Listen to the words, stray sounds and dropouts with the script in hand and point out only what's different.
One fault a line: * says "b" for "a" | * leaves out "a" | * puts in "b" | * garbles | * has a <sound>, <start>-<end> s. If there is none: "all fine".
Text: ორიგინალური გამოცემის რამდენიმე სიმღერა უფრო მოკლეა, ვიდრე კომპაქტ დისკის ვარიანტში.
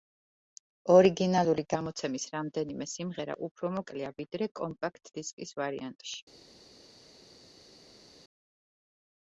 all fine